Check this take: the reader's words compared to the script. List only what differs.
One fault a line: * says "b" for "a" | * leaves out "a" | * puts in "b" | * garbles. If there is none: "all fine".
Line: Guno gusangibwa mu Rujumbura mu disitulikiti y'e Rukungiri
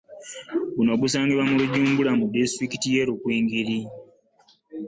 all fine